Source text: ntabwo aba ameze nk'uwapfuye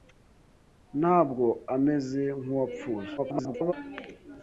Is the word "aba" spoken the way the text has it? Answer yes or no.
no